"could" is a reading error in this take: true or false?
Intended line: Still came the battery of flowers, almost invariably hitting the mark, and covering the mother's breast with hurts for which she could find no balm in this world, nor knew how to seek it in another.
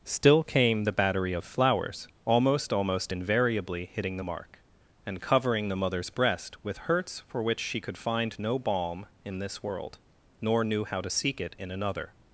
false